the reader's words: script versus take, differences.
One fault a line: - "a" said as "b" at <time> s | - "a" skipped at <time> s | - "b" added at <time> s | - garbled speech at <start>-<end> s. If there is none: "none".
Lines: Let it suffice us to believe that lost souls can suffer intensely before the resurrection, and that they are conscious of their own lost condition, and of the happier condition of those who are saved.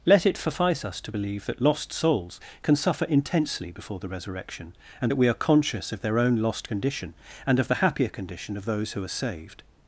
- "they" said as "we" at 5.2 s